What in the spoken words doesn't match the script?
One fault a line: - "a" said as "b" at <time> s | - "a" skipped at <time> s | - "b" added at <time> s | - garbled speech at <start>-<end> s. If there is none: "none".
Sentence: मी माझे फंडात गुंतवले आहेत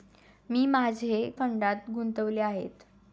none